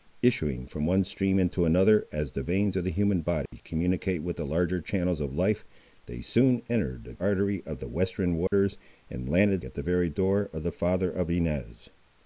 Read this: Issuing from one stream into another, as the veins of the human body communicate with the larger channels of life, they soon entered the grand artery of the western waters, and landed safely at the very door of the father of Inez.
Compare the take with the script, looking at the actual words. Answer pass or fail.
fail